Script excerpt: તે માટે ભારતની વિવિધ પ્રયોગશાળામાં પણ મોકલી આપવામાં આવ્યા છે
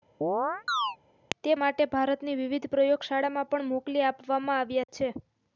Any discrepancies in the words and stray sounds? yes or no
yes